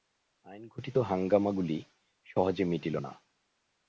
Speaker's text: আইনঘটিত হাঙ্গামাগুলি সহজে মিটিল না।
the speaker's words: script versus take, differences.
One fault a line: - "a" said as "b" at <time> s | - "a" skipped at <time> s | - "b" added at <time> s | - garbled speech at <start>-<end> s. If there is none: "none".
none